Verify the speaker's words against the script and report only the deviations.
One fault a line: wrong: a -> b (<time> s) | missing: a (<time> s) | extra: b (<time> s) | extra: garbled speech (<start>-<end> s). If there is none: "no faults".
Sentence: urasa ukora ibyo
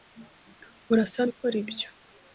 no faults